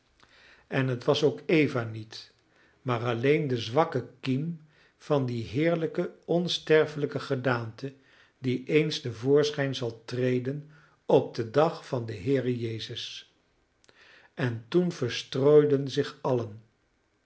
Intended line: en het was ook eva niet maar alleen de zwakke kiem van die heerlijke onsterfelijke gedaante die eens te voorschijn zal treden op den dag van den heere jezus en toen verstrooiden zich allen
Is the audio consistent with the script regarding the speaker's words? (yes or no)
yes